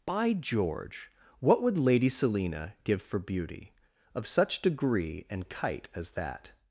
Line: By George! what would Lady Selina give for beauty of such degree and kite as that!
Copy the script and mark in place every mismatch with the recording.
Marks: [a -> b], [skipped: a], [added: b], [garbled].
By George! what would Lady Selina give for beauty of such degree and kite as that!